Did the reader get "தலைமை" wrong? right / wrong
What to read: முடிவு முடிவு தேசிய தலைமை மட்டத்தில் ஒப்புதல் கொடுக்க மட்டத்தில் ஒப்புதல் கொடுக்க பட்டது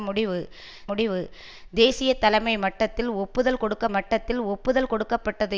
right